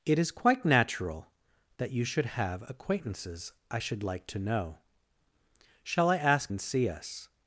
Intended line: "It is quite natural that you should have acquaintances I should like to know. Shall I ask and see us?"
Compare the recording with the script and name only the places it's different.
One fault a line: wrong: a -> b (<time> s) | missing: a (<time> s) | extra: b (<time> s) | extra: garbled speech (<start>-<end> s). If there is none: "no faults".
no faults